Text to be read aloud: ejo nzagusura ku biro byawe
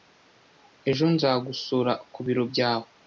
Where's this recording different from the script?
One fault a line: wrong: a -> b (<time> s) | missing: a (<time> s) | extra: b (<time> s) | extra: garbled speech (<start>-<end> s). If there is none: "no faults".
no faults